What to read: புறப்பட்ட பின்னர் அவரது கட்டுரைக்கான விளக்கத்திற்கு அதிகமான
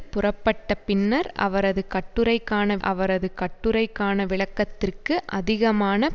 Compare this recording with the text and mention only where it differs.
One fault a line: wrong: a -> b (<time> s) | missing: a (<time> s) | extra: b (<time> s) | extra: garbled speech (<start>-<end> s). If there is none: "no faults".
extra: அவரது கட்டுரைக்கான (2.8 s)